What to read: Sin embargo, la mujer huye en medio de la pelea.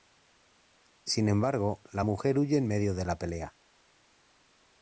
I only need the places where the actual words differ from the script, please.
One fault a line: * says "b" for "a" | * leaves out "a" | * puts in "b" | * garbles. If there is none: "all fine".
all fine